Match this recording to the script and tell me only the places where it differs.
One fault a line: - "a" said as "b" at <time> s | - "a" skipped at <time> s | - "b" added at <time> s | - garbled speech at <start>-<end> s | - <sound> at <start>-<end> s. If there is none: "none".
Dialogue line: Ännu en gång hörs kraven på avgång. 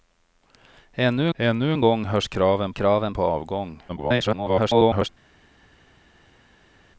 - "ännu" added at 1.3 s
- "kraven" added at 2.7 s
- garbled speech at 3.9-5.1 s